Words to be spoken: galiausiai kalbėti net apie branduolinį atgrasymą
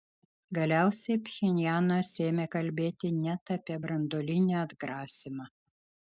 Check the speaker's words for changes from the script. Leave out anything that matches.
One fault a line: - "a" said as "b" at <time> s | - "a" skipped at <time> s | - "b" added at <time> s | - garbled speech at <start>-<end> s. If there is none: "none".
- "pchenjanas ėmė" added at 1.2 s